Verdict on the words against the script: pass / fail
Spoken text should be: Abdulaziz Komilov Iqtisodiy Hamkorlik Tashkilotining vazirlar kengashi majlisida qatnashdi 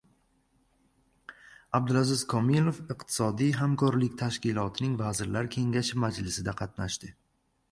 pass